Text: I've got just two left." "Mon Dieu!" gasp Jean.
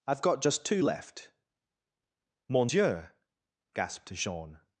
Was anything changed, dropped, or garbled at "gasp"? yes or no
yes